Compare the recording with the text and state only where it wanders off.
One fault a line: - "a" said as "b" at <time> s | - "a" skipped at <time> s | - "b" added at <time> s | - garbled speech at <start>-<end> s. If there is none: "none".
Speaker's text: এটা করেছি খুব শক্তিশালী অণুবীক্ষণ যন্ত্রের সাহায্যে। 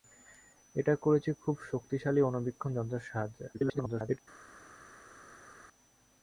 - garbled speech at 3.5-4.2 s